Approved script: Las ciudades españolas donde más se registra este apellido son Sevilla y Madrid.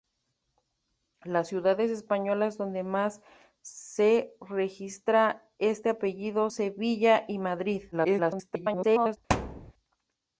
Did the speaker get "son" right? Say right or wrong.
wrong